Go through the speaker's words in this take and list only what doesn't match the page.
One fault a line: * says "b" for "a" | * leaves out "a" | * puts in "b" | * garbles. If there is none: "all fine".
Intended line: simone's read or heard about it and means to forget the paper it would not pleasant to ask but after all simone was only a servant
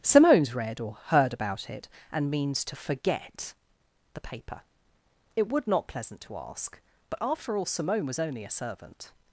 all fine